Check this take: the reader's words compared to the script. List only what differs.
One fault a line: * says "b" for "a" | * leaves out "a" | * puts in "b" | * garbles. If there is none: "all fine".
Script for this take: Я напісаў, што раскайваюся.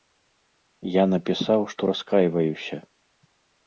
all fine